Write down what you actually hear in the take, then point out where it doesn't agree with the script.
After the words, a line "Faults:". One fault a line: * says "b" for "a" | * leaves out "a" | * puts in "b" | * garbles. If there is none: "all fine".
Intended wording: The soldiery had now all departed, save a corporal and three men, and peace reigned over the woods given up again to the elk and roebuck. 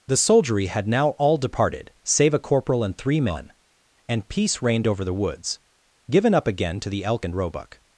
The soldiery had now all departed, save a corporal and three men, and peace reigned over the woods given up again to the elk and roebuck.
Faults:
all fine